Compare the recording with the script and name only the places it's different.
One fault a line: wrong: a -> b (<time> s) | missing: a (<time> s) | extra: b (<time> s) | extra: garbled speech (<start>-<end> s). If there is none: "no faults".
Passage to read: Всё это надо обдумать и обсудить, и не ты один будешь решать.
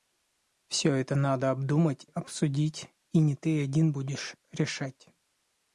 missing: и (2.1 s)